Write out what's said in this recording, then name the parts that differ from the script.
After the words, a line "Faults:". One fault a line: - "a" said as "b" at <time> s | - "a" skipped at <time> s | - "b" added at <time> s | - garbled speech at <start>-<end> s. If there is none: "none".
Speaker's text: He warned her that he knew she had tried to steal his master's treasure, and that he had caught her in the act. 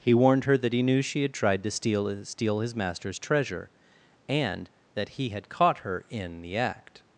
He warned her that he knew she had tried to steal steal his master's treasure, and that he had caught her in the act.
Faults:
- "steal" added at 2.2 s